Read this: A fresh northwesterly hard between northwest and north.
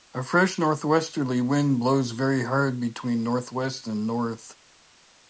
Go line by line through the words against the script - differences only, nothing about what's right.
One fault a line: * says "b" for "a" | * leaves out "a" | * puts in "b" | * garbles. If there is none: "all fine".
* puts in "wind blows very"